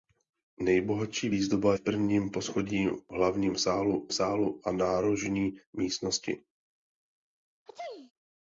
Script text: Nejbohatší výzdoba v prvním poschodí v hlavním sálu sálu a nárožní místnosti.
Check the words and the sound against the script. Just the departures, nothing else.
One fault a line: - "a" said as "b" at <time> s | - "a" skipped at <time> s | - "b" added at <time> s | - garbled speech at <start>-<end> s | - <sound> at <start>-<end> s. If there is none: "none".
- sneeze at 7.7-8.1 s